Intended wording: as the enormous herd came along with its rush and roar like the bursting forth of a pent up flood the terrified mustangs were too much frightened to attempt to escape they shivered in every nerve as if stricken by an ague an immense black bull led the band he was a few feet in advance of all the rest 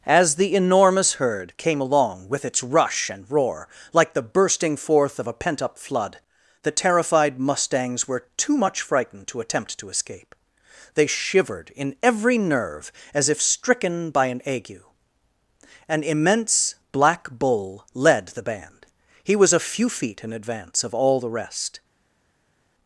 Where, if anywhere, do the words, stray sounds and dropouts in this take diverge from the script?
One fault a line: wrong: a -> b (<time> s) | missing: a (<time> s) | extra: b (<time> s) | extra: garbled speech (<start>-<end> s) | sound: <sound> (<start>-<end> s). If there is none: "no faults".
no faults